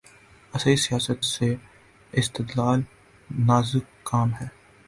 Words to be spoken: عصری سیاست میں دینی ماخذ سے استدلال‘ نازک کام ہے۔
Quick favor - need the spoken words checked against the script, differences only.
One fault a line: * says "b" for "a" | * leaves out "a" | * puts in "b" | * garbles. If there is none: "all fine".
* leaves out "میں دینی ماخذ"